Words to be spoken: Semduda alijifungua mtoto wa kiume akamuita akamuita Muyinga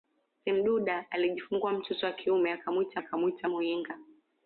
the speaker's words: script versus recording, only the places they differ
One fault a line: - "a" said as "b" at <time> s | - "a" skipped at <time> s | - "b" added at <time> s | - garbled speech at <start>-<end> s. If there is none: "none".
none